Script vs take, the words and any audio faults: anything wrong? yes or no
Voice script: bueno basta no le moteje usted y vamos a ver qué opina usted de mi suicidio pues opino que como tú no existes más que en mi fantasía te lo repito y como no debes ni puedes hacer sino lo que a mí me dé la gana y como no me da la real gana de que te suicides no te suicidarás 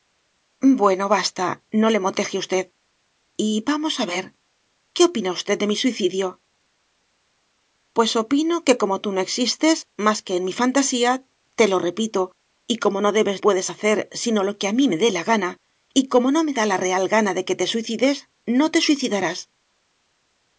yes